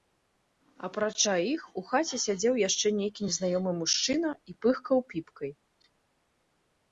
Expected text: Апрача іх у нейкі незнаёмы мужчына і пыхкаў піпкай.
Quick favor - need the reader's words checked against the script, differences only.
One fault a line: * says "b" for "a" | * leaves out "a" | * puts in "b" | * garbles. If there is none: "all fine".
* puts in "хаце сядзеў яшчэ"